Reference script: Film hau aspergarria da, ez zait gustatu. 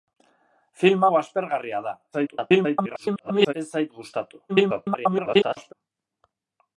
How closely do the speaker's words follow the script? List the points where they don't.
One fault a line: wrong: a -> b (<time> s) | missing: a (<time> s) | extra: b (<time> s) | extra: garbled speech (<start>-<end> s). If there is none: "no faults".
extra: garbled speech (2.1-3.5 s)
extra: garbled speech (4.5-5.7 s)